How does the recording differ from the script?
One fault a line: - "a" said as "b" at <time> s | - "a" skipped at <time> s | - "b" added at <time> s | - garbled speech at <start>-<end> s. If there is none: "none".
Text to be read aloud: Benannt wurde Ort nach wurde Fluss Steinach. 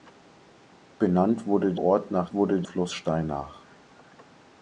none